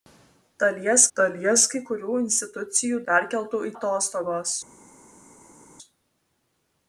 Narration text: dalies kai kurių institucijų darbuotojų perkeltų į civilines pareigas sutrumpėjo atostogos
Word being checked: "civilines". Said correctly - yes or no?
no